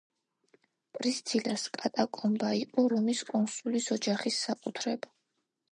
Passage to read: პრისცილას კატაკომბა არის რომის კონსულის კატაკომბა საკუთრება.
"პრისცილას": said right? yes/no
yes